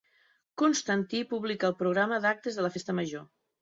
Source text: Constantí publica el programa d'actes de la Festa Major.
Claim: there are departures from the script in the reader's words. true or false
false